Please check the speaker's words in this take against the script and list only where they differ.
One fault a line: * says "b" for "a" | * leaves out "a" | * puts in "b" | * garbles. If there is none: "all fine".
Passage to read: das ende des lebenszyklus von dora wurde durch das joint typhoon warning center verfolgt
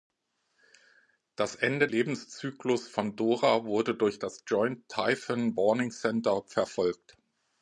* leaves out "des"